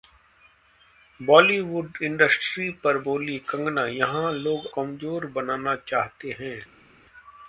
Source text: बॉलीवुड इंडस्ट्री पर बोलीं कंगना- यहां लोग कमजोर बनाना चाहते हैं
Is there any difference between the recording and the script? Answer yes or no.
no